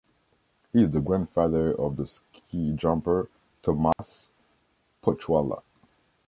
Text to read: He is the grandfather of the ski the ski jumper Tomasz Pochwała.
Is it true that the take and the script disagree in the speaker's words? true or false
true